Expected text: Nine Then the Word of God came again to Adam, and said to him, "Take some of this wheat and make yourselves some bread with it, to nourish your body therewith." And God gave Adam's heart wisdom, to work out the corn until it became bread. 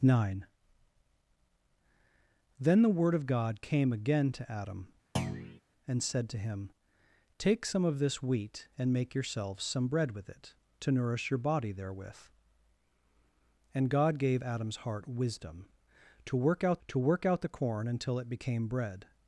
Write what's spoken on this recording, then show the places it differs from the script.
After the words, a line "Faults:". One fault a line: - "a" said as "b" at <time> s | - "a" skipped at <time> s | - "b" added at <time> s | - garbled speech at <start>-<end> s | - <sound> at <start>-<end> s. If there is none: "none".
Nine Then the Word of God came again to Adam, and said to him, "Take some of this wheat and make yourselves some bread with it, to nourish your body therewith." And God gave Adam's heart wisdom, to work out to work out the corn until it became bread.
Faults:
- thud at 5.2-5.6 s
- "to work out" added at 16.9 s